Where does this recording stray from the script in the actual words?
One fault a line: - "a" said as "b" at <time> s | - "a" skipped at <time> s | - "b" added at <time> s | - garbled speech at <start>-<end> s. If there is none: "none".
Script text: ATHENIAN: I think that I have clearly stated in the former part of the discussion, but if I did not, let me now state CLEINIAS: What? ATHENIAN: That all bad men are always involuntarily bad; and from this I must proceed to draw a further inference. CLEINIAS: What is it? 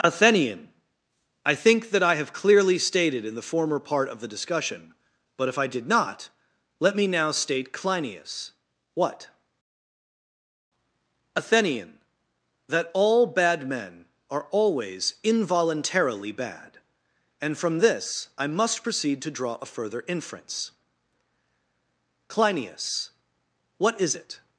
none